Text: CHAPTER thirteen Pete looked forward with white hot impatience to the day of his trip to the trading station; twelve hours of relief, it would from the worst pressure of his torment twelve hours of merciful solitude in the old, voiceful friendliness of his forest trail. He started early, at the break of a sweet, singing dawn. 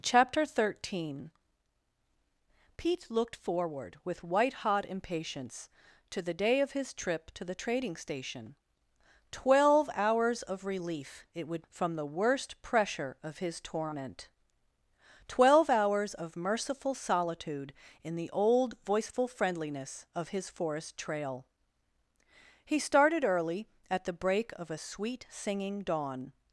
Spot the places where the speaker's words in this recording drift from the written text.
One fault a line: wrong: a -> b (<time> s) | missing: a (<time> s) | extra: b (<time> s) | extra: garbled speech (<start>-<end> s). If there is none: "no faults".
no faults